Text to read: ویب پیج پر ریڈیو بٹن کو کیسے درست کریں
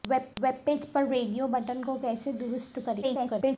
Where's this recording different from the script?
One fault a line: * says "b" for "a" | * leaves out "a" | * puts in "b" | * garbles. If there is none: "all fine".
* puts in "ویب"
* garbles